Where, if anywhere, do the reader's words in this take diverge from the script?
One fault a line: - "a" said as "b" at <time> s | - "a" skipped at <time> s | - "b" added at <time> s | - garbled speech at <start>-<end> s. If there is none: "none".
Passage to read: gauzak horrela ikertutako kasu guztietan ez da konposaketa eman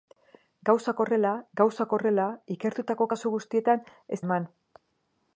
- "gauzak horrela" added at 1.6 s
- "da konposaketa" skipped at 4.2 s